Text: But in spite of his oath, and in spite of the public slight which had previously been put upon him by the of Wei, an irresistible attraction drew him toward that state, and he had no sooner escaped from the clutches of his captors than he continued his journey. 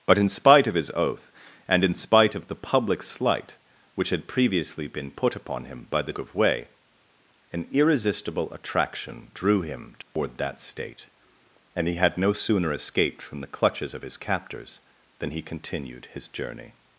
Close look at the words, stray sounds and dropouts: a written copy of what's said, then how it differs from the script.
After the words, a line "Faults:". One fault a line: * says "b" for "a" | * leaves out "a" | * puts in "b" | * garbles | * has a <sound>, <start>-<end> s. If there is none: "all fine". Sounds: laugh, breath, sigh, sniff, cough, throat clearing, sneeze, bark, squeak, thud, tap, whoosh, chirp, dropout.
But in spite of his oath, and in spite of the public slight which had previously been put upon him by the of Wei, an irresistible attraction drew him toward that state, and he had no sooner escaped from the clutches of his captors than he continued his journey.
Faults:
* has a dropout, 10.0-10.2 s